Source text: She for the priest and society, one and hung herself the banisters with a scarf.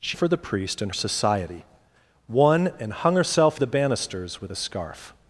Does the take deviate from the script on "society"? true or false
false